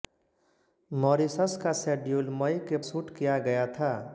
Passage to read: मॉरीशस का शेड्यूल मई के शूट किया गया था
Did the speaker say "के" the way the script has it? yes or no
yes